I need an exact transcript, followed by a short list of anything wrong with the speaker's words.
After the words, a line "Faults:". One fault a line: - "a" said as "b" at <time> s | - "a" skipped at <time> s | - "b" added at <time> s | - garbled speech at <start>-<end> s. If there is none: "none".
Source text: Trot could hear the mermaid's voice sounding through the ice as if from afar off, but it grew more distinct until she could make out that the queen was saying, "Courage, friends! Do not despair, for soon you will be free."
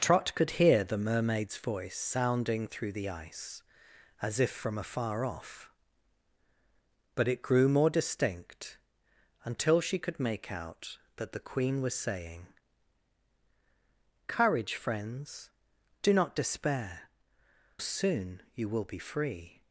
Trot could hear the mermaid's voice sounding through the ice as if from afar off, but it grew more distinct until she could make out that the queen was saying, "Courage, friends! Do not despair, soon you will be free."
Faults:
- "for" skipped at 17.1 s